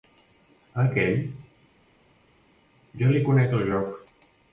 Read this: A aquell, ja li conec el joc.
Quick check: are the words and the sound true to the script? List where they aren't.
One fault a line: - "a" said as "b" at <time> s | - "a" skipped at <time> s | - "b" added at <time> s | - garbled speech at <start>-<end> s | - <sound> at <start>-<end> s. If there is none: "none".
none